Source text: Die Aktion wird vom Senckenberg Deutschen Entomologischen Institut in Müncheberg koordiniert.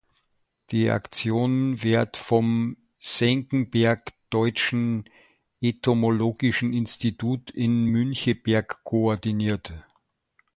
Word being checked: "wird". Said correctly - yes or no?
yes